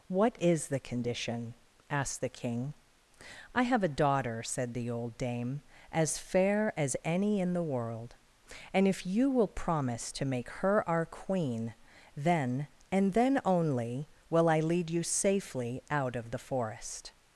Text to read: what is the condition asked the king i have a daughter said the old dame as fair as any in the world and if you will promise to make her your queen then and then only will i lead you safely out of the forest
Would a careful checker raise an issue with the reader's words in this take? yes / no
yes